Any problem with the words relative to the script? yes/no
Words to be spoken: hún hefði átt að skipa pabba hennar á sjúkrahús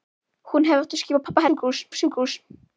yes